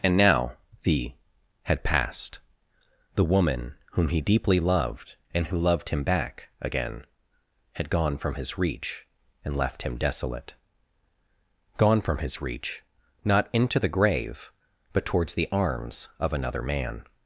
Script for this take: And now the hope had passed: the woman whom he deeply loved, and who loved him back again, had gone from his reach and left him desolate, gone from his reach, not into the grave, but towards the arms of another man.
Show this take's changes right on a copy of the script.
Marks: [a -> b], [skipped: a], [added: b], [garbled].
And now the [skipped: hope] had passed: the woman whom he deeply loved, and who loved him back again, had gone from his reach and left him desolate, gone from his reach, not into the grave, but towards the arms of another man.